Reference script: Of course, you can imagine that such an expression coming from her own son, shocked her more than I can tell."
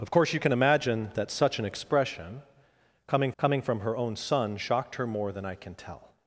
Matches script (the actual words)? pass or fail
fail